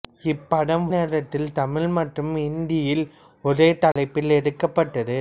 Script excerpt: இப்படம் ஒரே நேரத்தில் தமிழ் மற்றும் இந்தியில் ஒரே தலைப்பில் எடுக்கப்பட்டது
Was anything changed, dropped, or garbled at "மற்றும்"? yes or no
no